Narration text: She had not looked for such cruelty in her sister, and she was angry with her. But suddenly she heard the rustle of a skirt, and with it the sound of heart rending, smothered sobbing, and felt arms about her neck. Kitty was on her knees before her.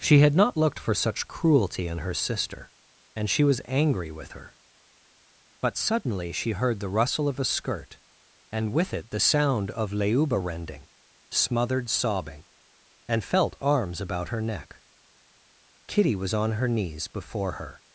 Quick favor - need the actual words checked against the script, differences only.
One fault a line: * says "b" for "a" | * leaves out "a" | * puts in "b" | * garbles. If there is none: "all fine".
* says "leuba" for "heart"